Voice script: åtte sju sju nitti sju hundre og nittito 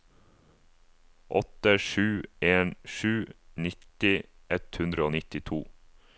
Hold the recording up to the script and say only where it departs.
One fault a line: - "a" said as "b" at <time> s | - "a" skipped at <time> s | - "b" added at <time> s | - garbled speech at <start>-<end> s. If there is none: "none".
- "en" added at 2.4 s
- "sju" said as "ett" at 4.6 s